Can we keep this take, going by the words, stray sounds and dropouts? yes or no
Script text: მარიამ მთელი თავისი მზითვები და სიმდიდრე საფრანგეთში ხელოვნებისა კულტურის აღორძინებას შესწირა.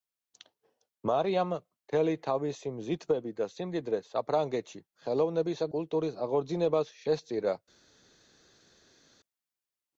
yes